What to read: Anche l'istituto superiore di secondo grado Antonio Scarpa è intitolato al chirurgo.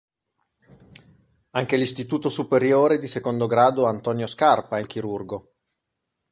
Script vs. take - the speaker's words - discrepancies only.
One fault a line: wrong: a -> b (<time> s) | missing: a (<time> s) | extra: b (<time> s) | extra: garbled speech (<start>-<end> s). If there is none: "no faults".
missing: intitolato (4.8 s)